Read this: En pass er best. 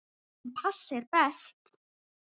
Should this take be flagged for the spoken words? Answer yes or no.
no